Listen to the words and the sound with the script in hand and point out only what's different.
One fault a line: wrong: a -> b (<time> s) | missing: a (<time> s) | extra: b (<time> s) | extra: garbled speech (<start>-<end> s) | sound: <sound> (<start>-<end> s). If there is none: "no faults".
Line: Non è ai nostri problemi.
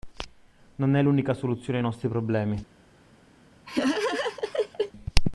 extra: l'unica soluzione (1.0 s)
sound: laugh (3.7-4.9 s)